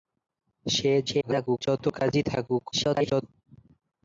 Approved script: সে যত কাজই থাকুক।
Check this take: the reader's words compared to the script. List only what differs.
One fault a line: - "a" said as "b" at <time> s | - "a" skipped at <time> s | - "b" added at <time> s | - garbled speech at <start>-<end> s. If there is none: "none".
- garbled speech at 1.1-1.6 s
- garbled speech at 2.7-3.2 s